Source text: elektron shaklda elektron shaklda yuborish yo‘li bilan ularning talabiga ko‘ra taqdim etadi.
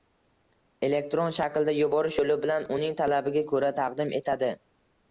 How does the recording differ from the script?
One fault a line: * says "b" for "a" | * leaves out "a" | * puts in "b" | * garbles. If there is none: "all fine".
* leaves out "elektron shaklda"
* says "uning" for "ularning"